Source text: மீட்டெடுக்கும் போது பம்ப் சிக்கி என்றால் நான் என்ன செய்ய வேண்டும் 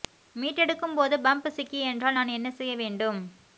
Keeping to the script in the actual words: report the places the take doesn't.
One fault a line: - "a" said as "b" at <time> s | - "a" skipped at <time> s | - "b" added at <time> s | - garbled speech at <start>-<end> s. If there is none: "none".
none